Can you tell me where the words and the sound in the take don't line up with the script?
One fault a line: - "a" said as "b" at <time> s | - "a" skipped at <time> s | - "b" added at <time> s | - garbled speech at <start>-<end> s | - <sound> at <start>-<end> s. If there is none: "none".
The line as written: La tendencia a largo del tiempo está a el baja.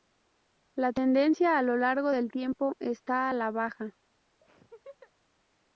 - "lo" added at 1.6 s
- "el" said as "la" at 3.3 s
- laugh at 4.4-5.1 s